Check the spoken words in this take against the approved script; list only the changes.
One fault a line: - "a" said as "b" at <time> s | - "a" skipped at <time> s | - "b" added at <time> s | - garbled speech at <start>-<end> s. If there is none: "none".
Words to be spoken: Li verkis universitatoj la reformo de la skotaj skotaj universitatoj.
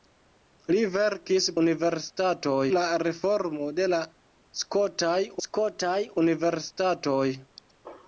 none